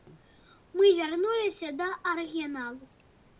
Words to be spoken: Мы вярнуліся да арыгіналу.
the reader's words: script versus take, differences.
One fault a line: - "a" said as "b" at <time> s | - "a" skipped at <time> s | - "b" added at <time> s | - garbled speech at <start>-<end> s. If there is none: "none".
none